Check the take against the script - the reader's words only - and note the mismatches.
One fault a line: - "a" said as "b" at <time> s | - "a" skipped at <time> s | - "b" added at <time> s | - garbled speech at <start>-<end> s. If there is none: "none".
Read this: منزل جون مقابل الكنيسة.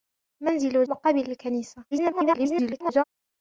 - "جون" skipped at 0.8 s
- garbled speech at 1.9-3.0 s